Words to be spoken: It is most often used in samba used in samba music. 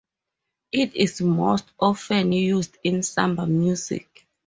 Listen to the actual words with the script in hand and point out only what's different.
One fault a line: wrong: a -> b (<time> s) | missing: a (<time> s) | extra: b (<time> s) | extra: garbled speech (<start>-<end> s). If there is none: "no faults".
missing: used in samba (3.5 s)